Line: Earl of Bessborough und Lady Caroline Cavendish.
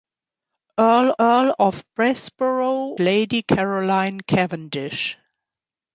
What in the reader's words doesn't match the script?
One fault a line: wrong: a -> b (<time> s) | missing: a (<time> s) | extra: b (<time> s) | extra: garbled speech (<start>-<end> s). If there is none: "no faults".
extra: earl (1.2 s)
missing: und (2.9 s)